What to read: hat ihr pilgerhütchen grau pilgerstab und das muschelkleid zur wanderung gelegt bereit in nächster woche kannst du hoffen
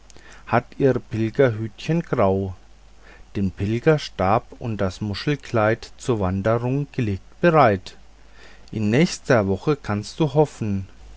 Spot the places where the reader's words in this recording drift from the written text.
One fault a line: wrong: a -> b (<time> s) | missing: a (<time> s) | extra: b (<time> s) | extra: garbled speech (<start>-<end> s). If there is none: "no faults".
extra: den (3.4 s)